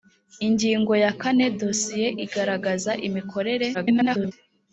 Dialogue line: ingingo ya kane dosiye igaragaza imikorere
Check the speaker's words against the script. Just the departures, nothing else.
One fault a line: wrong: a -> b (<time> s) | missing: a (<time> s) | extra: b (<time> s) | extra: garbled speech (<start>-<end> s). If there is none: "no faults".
extra: garbled speech (3.7-4.3 s)